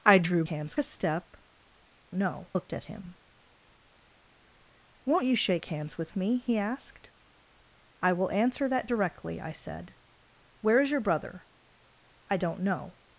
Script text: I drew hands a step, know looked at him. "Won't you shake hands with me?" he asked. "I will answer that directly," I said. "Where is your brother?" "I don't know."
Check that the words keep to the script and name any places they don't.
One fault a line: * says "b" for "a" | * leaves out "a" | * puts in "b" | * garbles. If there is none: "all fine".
all fine